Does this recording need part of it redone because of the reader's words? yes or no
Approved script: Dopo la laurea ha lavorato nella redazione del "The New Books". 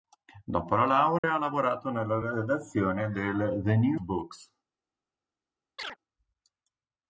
no